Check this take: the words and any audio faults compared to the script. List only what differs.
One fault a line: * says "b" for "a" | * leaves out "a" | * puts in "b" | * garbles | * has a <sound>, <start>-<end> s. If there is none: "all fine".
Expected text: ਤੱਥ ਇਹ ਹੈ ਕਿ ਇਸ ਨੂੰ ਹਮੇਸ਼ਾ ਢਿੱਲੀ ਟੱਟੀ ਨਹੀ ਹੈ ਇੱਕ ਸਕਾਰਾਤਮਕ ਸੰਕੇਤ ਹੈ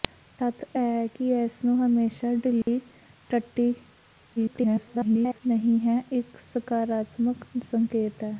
* has a dropout, 2.6-2.7 s
* garbles